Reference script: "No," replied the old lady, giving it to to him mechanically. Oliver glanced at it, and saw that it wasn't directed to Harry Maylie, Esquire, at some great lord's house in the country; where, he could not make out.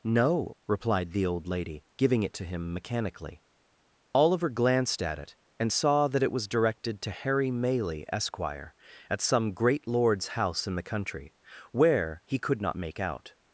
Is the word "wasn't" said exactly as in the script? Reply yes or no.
no